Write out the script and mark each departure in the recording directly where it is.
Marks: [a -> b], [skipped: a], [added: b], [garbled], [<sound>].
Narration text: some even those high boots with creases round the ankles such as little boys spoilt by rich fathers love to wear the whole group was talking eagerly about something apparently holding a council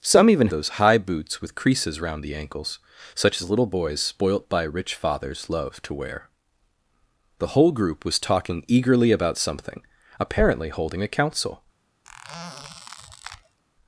some even those high boots with creases round the ankles such as little boys spoilt by rich fathers love to wear the whole group was talking eagerly about something apparently holding a council [squeak]